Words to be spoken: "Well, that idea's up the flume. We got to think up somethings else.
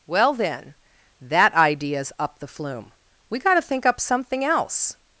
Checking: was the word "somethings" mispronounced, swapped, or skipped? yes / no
yes